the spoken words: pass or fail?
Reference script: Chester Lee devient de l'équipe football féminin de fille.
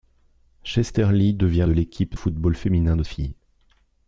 pass